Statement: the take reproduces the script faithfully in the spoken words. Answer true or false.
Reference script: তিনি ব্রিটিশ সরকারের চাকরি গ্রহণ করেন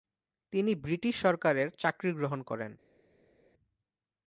true